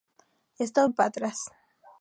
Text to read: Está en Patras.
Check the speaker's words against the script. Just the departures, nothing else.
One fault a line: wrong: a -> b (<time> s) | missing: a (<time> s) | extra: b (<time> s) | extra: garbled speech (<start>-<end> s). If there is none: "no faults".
no faults